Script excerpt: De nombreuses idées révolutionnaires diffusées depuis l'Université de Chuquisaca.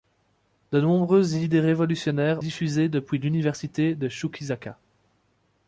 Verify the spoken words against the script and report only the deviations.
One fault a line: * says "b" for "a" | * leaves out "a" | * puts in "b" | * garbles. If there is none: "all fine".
all fine